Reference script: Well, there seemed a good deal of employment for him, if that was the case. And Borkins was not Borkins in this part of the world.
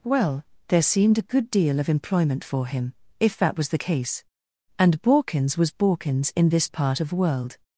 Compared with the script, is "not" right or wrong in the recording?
wrong